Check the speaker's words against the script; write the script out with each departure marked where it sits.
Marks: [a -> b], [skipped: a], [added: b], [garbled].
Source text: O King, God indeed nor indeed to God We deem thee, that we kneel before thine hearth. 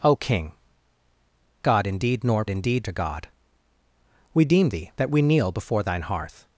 O King, God indeed nor indeed to God We deem thee, that we kneel before thine hearth.